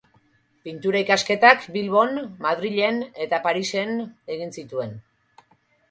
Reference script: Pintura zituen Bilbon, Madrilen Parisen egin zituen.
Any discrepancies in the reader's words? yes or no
yes